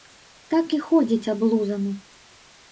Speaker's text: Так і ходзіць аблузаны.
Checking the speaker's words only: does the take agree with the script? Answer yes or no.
yes